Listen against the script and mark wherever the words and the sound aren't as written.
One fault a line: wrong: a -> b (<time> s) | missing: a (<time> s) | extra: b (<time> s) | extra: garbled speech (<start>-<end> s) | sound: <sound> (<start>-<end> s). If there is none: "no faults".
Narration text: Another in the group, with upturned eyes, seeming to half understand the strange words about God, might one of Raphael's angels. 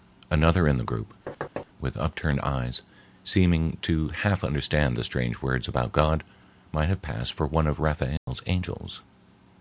sound: thud (1.3-1.7 s)
extra: have passed for (6.9 s)
sound: dropout (8.2-8.3 s)